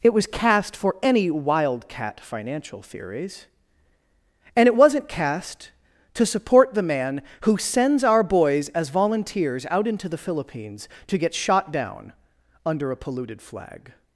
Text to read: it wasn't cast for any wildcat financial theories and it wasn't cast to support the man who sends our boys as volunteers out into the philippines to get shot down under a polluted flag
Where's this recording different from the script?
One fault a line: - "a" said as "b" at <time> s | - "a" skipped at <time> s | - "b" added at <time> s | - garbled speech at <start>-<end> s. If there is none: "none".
- "wasn't" said as "was" at 0.1 s